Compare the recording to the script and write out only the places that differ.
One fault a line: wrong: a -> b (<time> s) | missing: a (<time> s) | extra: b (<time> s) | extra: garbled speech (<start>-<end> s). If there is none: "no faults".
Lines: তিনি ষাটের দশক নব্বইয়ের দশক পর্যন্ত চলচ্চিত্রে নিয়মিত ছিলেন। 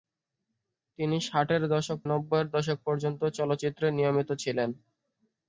no faults